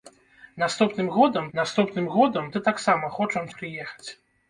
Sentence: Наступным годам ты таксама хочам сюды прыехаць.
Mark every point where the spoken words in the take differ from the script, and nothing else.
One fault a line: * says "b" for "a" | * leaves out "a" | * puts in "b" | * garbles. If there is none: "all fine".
* puts in "наступным годам"
* leaves out "сюды"